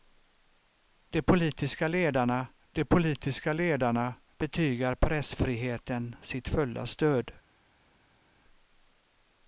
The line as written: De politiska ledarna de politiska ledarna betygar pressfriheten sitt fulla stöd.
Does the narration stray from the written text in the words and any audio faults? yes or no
no